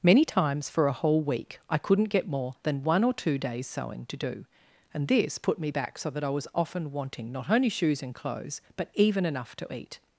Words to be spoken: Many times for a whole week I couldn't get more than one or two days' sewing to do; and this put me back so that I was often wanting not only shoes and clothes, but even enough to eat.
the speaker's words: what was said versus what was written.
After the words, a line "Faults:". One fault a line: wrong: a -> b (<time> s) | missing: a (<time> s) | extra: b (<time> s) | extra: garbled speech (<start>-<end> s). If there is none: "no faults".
Many times for a whole week I couldn't get more than one or two days' sewing to do; and this put me back so that I was often wanting not only shoes and clothes, but even enough to eat.
Faults:
no faults